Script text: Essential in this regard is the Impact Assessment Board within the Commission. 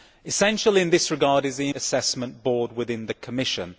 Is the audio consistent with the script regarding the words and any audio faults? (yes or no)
no